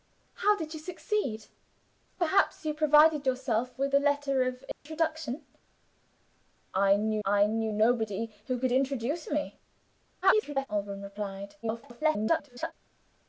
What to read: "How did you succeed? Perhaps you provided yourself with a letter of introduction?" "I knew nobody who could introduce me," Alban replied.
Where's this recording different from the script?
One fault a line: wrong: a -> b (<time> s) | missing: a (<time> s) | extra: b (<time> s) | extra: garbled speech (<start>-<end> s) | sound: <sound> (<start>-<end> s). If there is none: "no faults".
sound: dropout (4.7-4.9 s)
extra: I knew (7.2 s)
extra: garbled speech (10.2-10.7 s)
extra: garbled speech (11.6-12.7 s)